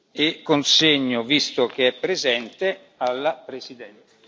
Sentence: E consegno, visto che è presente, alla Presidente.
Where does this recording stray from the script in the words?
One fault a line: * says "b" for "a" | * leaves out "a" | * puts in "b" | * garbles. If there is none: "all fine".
all fine